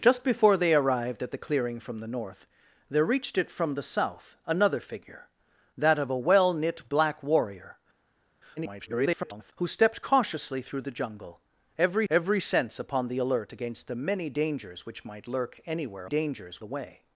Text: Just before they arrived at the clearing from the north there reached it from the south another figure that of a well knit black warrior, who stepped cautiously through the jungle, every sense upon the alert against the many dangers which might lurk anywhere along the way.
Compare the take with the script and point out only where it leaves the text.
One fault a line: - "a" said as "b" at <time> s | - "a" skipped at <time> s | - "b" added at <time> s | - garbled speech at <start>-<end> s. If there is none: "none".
- garbled speech at 8.6-9.5 s
- "every" added at 12.1 s
- "along" said as "dangers" at 16.0 s